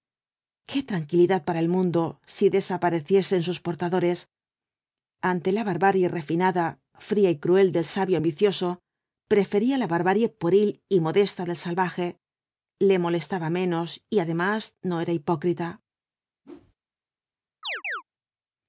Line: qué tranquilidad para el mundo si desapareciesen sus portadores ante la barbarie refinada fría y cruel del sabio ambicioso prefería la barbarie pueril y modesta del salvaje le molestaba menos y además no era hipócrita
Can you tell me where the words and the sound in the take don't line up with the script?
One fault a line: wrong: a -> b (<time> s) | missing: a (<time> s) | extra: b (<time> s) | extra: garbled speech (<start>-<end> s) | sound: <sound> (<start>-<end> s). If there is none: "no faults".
sound: whoosh (16.4-16.8 s)
sound: chirp (17.6-18.0 s)